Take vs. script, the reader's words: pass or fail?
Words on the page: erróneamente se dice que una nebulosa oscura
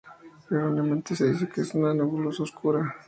fail